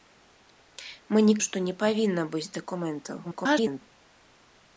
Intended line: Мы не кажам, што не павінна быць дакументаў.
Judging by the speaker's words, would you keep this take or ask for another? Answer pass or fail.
fail